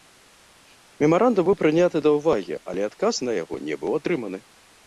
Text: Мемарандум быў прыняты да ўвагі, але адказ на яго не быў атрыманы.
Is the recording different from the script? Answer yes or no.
no